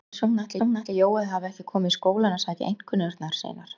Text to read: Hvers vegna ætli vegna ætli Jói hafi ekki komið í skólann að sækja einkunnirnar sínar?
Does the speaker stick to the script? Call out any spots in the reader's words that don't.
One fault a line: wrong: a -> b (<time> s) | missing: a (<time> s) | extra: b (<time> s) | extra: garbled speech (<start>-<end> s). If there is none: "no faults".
no faults